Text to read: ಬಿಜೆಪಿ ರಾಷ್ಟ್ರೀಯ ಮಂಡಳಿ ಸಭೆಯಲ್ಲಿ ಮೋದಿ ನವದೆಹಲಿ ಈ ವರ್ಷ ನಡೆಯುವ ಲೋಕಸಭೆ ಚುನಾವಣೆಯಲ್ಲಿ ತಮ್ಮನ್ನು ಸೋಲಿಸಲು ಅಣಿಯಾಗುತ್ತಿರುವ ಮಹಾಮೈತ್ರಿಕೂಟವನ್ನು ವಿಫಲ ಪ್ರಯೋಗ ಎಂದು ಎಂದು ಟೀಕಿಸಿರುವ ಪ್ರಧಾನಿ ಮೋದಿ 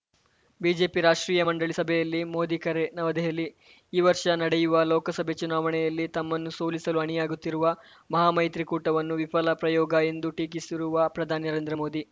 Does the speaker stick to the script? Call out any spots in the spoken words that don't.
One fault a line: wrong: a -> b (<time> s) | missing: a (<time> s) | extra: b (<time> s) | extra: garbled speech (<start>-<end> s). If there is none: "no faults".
extra: ಕರೆ (2.6 s)
missing: ಎಂದು (10.3 s)
extra: ನರೇಂದ್ರ (11.5 s)